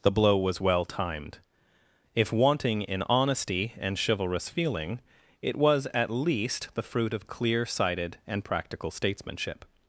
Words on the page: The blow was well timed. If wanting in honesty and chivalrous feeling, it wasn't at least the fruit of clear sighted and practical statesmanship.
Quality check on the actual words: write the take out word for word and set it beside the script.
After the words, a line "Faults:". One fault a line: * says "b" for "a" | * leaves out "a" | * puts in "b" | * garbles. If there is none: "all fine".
The blow was well timed. If wanting in honesty and chivalrous feeling, it was at least the fruit of clear sighted and practical statesmanship.
Faults:
* says "was" for "wasn't"